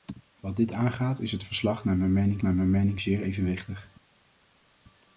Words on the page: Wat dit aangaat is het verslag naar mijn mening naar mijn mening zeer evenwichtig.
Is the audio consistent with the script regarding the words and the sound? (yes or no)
yes